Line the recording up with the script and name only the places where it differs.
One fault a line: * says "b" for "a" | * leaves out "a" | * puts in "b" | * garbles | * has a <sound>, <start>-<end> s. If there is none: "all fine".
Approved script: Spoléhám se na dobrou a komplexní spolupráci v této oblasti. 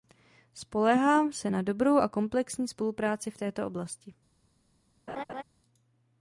* has a laugh, 5.1-5.4 s